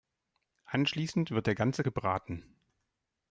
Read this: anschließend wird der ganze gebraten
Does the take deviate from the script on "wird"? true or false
false